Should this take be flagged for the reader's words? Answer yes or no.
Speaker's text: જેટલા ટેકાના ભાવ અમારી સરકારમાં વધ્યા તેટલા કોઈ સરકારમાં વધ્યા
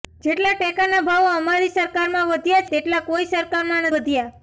no